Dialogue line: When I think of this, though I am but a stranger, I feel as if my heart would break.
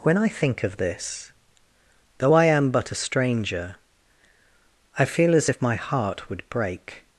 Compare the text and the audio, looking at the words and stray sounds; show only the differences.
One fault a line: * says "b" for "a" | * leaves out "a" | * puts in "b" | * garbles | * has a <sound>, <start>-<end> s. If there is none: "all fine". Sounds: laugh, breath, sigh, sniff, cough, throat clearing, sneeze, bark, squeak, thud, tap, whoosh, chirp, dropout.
all fine